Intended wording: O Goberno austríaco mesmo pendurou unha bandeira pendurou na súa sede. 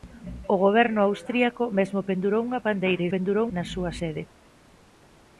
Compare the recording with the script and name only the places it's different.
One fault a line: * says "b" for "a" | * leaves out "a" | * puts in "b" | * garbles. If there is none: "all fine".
all fine